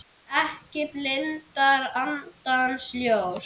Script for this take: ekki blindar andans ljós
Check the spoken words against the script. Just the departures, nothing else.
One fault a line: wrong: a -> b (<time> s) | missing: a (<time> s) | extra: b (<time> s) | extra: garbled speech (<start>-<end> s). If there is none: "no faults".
no faults